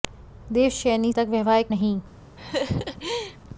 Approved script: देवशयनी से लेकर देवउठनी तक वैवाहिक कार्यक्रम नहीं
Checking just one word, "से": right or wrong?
wrong